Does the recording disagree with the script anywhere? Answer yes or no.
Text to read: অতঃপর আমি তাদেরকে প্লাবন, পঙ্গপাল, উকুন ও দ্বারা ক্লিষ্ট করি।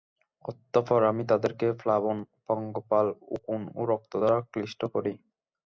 yes